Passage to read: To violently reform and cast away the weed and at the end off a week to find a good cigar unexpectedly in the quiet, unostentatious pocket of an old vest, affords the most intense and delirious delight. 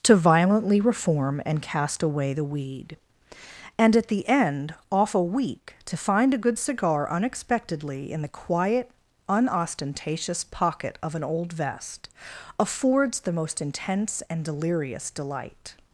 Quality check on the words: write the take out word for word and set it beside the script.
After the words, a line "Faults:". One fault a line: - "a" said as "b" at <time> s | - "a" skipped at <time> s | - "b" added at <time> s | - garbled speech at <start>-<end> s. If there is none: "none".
To violently reform and cast away the weed and at the end off a week to find a good cigar unexpectedly in the quiet, unostentatious pocket of an old vest, affords the most intense and delirious delight.
Faults:
none